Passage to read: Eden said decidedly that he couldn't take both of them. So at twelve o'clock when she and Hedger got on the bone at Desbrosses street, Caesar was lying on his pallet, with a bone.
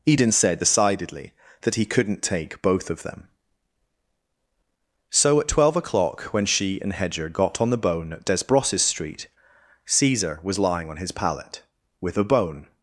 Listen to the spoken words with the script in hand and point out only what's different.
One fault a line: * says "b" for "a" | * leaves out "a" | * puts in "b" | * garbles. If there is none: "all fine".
all fine